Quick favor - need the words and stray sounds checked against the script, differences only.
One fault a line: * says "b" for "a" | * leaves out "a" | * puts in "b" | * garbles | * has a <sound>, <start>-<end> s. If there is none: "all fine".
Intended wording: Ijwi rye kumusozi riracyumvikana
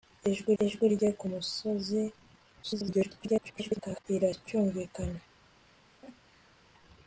* puts in "ijwi"
* garbles
* has a laugh, 5.6-6.6 s